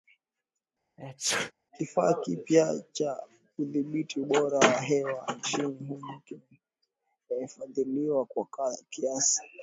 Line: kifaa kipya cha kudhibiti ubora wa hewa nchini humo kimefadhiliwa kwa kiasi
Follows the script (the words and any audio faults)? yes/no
no